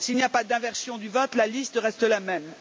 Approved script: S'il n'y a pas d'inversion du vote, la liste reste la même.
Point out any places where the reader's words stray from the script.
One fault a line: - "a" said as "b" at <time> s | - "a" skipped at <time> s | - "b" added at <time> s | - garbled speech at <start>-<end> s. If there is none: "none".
none